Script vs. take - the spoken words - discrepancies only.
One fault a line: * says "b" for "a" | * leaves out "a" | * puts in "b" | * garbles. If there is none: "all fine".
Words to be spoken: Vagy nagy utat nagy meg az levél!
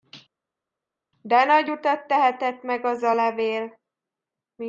* says "De" for "Vagy"
* says "tehetett" for "nagy"
* puts in "a"